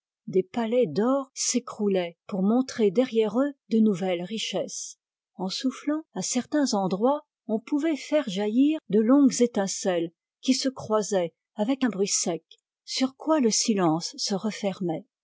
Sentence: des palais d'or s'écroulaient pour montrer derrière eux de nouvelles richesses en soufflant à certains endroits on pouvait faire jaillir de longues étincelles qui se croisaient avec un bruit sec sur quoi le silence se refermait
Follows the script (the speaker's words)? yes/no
yes